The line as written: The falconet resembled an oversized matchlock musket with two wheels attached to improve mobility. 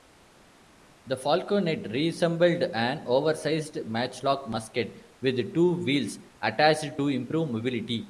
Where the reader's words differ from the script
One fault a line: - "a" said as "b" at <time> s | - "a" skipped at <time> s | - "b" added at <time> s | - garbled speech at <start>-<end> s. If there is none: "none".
none